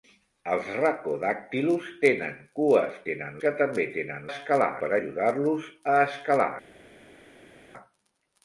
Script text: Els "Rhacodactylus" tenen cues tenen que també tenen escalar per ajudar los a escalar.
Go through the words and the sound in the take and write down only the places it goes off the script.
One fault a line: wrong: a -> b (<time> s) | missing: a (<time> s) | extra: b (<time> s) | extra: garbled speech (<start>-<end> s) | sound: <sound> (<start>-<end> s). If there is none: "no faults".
no faults